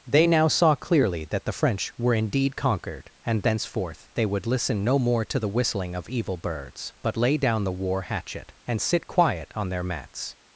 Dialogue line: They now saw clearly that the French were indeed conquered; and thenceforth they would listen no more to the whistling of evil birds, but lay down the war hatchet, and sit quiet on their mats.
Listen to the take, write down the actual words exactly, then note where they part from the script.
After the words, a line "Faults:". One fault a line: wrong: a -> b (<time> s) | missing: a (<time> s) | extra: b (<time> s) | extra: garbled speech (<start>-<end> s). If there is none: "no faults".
They now saw clearly that the French were indeed conquered; and thenceforth they would listen no more to the whistling of evil birds, but lay down the war hatchet, and sit quiet on their mats.
Faults:
no faults